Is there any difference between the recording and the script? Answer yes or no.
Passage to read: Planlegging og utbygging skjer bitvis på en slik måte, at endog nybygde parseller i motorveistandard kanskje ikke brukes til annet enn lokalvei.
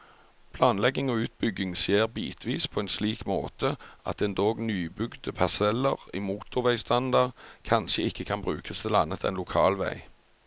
yes